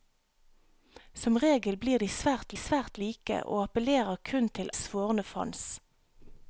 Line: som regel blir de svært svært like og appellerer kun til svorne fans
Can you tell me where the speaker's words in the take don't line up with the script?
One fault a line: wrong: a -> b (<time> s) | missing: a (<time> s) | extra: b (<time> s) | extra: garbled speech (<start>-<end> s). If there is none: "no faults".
no faults